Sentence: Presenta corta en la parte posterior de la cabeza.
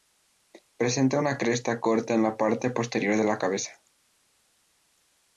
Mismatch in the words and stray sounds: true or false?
true